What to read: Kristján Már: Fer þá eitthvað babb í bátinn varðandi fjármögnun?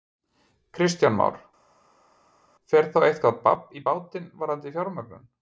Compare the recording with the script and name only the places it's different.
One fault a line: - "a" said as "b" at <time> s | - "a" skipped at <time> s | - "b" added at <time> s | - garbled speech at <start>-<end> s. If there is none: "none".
none